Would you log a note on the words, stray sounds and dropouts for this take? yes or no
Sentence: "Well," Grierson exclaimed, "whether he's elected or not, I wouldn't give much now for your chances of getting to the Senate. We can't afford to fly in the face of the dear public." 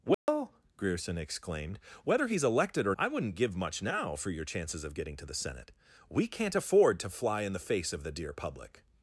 yes